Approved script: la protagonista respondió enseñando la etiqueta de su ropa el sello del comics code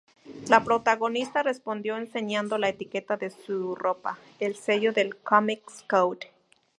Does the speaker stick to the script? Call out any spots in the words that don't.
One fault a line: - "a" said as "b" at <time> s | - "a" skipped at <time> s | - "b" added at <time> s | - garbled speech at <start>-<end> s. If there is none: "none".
none